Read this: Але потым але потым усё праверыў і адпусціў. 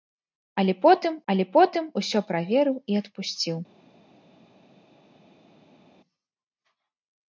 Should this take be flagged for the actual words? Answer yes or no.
no